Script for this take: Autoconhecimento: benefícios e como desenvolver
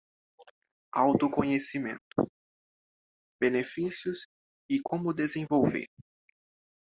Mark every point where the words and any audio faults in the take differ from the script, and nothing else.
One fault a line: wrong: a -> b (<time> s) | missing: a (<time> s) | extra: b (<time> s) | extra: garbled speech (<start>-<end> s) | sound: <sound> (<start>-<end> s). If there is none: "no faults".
no faults